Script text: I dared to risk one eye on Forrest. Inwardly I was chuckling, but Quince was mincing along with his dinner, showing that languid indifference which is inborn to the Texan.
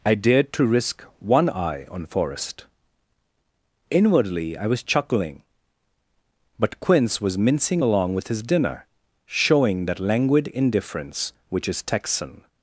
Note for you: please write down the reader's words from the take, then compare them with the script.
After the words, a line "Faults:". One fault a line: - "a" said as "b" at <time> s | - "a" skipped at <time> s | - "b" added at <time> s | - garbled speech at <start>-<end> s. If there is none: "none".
I dared to risk one eye on Forrest. Inwardly I was chuckling, but Quince was mincing along with his dinner, showing that languid indifference which is Texan.
Faults:
- "inborn to the" skipped at 11.8 s